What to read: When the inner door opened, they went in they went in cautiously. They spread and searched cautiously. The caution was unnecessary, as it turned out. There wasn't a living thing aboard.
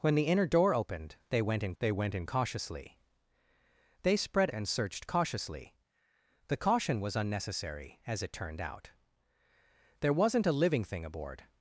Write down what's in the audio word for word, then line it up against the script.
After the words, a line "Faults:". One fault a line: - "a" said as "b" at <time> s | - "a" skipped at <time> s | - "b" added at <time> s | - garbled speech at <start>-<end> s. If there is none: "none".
When the inner door opened, they went in they went in cautiously. They spread and searched cautiously. The caution was unnecessary, as it turned out. There wasn't a living thing aboard.
Faults:
none